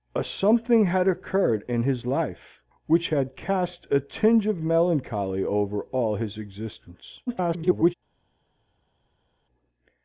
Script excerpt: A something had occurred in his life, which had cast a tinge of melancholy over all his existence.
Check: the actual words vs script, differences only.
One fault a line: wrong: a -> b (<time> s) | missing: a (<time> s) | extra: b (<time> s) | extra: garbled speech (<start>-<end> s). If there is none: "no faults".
extra: garbled speech (7.3-7.9 s)